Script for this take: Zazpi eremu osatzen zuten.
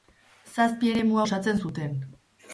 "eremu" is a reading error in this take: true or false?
false